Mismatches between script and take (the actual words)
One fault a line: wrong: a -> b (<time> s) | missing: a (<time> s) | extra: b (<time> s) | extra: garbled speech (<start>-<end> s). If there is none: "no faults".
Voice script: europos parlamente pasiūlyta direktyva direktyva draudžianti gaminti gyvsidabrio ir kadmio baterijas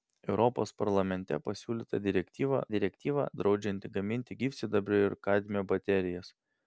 no faults